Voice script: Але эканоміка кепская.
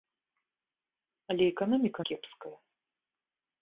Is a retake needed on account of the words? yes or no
no